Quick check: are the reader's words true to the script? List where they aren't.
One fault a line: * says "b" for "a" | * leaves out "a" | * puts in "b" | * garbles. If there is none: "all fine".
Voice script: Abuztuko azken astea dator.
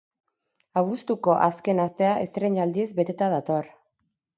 * puts in "estreinaldiz beteta"